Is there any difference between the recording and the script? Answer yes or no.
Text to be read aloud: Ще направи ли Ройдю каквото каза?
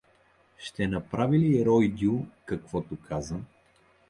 no